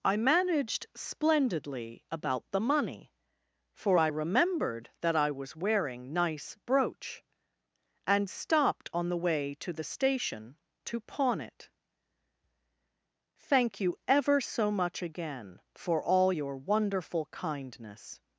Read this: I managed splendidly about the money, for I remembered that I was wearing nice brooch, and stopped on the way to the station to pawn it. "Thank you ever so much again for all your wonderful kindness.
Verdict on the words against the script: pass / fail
pass